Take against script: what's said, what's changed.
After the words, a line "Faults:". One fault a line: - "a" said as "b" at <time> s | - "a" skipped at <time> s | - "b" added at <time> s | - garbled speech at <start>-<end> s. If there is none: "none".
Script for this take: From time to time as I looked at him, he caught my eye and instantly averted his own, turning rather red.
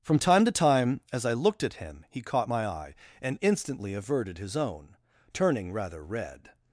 From time to time as I looked at him, he caught my eye and instantly averted his own, turning rather red.
Faults:
none